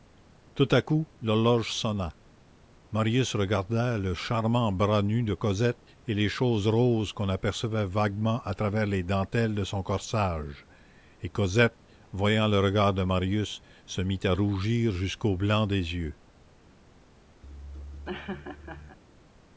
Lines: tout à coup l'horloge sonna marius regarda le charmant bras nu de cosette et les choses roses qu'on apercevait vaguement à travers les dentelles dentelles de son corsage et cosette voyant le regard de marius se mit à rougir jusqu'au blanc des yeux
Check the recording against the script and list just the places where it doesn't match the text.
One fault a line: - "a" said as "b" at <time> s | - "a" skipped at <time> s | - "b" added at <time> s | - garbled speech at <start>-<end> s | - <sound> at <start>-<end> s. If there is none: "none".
- "dentelles" skipped at 9.5 s
- laugh at 17.4-19.0 s